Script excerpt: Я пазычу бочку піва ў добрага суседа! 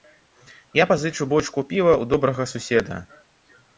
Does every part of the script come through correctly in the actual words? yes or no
yes